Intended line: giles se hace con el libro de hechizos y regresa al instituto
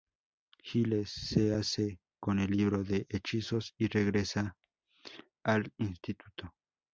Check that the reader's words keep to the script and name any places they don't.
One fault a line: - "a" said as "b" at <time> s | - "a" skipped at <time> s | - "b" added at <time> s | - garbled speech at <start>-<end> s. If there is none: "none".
none